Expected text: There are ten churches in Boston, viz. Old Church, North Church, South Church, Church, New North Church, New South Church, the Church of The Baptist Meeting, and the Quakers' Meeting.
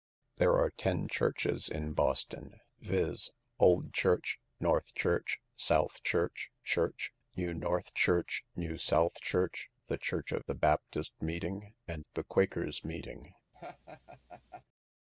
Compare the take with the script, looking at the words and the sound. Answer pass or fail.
fail